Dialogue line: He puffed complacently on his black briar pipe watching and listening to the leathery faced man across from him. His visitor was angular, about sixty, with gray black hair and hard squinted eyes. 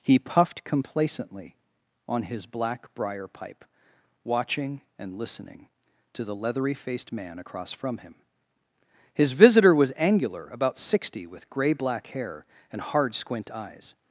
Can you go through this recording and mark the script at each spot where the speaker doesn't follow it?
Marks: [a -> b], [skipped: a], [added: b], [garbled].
He puffed complacently on his black briar pipe watching and listening to the leathery faced man across from him. His visitor was angular, about sixty, with gray black hair and hard [squinted -> squint] eyes.